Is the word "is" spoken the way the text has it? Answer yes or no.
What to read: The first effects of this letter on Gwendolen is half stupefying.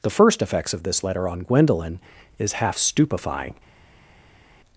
yes